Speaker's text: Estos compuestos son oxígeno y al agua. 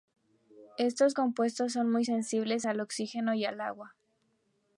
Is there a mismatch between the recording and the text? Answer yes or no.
yes